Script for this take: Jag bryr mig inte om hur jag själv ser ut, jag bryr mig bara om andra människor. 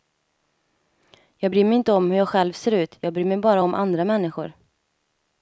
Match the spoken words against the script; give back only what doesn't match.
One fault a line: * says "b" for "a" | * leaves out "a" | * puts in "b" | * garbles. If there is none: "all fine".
all fine